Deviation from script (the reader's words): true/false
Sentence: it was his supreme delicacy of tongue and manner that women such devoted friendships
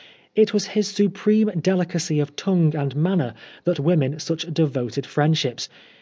false